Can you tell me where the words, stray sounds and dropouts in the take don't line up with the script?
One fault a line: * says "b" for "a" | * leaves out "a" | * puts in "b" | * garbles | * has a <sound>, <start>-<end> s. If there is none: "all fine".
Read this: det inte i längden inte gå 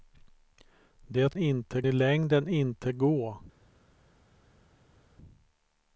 all fine